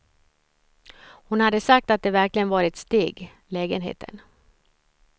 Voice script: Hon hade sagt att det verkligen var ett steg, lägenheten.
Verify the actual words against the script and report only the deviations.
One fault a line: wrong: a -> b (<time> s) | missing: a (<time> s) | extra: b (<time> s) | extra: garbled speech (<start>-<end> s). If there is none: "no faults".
no faults